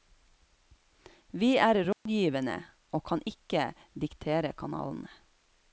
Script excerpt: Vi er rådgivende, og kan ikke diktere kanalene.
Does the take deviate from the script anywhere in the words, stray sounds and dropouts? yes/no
yes